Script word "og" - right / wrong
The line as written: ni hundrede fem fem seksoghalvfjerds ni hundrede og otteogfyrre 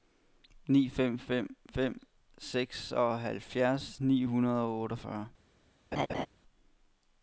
right